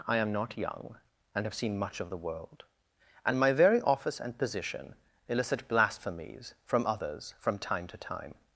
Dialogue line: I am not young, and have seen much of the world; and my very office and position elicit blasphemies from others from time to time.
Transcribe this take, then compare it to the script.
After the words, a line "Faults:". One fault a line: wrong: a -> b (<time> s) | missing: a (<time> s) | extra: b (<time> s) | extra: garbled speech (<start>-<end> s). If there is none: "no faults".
I am not young, and have seen much of the world; and my very office and position elicit blasphemies from others from time to time.
Faults:
no faults